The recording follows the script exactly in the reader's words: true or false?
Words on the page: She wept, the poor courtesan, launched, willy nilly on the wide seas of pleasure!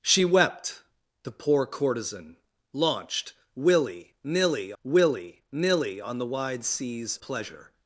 false